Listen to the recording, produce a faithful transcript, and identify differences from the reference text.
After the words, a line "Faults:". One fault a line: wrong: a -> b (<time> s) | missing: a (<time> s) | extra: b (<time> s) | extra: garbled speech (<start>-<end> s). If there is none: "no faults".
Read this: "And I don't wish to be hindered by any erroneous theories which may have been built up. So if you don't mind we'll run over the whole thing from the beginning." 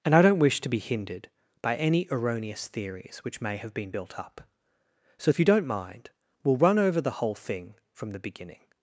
"And I don't wish to be hindered by any erroneous theories which may have been built up. So if you don't mind we'll run over the whole thing from the beginning."
Faults:
no faults